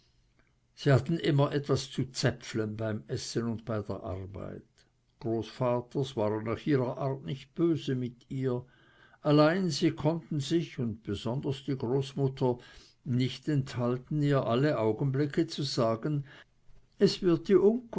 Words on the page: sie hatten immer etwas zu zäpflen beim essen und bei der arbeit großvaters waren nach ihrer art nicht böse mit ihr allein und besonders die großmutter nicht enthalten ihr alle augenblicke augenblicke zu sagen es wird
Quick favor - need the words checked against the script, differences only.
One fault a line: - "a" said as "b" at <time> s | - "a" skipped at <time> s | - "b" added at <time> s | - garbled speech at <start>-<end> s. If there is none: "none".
- "sie konnten sich" added at 9.7 s
- "augenblicke" skipped at 15.4 s